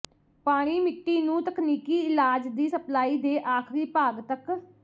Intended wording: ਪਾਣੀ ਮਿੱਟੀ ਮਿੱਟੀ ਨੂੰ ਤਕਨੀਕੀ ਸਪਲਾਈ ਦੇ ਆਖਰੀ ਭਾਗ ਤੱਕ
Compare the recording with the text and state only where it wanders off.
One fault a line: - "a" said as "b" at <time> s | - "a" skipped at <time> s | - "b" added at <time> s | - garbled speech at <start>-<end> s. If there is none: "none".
- "ਮਿੱਟੀ" skipped at 1.2 s
- "ਇਲਾਜ ਦੀ" added at 2.0 s